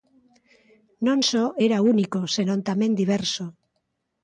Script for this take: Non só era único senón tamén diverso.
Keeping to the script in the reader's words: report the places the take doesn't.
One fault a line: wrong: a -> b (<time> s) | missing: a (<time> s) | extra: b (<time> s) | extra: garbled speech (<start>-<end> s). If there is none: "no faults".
no faults